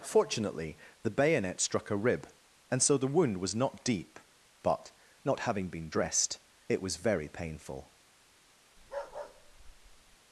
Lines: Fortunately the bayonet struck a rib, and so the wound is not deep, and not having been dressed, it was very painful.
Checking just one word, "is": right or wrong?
wrong